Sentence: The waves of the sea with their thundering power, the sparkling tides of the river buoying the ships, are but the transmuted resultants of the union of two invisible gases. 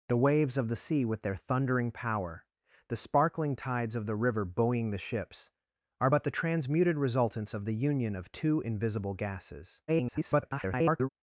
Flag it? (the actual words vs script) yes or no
yes